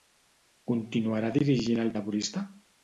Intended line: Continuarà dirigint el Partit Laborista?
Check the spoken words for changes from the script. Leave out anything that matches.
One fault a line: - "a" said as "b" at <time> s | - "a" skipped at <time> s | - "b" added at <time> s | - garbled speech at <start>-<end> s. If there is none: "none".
- "Partit" skipped at 1.9 s